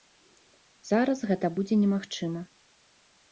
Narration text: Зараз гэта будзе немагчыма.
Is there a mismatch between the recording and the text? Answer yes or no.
no